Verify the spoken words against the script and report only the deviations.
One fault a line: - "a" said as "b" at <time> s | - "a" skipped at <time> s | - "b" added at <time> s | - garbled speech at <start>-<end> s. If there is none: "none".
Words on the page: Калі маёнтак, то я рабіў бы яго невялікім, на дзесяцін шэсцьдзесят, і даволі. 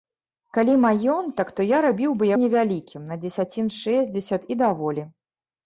- "яго" skipped at 2.3 s